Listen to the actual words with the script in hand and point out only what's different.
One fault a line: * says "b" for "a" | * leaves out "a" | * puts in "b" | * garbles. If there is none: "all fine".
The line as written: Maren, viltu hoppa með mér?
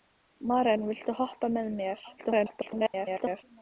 * garbles